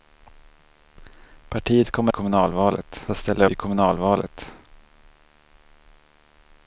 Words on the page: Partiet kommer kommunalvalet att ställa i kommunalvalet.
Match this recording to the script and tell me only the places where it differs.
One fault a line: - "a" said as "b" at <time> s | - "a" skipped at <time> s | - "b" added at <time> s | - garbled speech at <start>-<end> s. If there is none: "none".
none